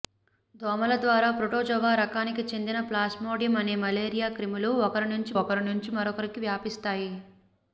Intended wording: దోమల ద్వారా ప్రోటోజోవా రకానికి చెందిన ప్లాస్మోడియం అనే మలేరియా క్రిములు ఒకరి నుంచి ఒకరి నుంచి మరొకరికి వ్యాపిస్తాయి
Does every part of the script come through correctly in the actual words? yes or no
yes